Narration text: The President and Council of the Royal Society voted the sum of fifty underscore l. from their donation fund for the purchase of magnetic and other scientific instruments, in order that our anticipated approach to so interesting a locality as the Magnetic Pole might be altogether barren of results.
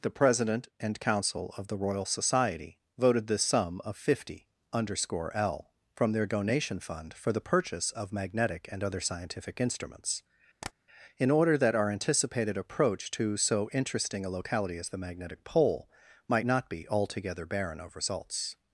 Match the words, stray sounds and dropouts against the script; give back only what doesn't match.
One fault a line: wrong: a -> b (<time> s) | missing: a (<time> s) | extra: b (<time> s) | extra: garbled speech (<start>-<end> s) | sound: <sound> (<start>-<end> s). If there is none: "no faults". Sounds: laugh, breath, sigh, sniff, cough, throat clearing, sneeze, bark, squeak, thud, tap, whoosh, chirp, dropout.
sound: tap (10.6-10.7 s)
extra: not (16.4 s)